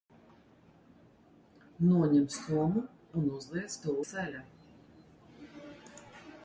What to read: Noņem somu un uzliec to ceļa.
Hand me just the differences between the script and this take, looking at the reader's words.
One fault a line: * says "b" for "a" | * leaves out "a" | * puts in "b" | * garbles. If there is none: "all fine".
all fine